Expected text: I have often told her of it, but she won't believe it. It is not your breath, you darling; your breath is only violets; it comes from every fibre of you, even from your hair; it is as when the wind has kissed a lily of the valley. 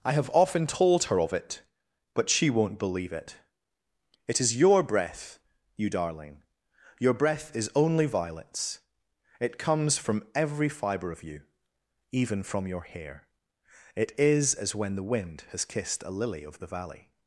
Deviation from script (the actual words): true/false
true